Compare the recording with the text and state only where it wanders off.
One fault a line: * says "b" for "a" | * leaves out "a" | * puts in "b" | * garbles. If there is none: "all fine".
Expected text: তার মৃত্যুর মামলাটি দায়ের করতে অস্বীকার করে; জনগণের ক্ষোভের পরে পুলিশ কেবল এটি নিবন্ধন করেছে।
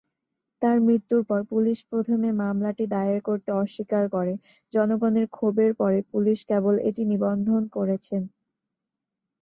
* puts in "পর পুলিশ প্রথমে"